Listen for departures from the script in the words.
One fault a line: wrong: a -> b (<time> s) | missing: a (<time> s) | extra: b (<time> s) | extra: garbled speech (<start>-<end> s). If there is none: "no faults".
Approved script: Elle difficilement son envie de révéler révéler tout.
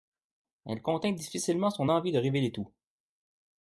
extra: contint (0.8 s)
missing: révéler (2.5 s)